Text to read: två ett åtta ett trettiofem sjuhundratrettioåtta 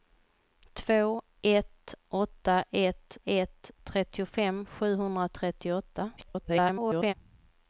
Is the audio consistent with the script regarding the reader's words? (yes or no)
no